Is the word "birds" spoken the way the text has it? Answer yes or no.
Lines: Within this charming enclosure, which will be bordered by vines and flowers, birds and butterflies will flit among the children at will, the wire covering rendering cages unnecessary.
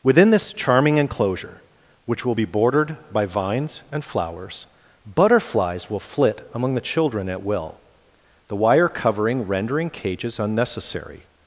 no